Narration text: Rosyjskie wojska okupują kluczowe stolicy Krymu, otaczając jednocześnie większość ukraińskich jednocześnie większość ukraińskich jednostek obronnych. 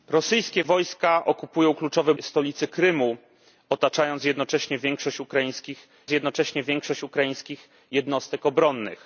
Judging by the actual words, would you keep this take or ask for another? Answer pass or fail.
pass